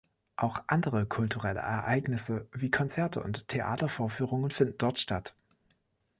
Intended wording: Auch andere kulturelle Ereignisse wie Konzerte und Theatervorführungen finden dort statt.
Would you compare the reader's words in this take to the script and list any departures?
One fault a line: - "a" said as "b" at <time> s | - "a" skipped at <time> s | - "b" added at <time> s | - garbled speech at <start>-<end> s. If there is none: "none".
none